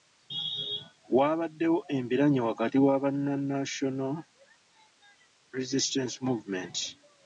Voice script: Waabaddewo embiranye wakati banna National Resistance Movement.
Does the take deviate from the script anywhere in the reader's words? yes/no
yes